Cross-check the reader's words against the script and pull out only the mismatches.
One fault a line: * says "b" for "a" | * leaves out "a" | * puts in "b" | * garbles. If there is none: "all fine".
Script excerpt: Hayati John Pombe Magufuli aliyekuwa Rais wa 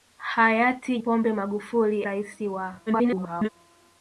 * leaves out "John"
* leaves out "aliyekuwa"
* garbles